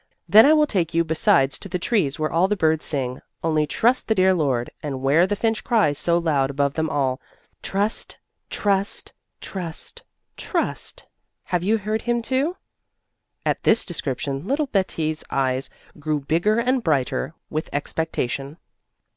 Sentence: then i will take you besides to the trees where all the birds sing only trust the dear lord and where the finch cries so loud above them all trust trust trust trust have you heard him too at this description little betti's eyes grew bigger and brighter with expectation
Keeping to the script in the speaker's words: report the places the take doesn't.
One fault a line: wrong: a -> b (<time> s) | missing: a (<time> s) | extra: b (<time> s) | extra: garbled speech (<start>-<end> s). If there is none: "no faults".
no faults